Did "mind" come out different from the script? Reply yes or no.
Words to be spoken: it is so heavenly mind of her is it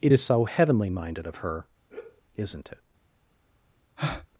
yes